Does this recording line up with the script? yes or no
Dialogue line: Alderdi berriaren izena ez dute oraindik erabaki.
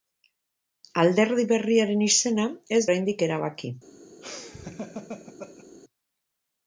no